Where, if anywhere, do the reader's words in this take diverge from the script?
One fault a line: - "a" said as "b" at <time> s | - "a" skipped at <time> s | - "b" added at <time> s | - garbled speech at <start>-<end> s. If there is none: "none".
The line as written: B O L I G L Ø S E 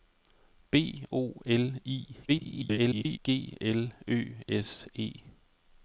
- garbled speech at 2.3-3.2 s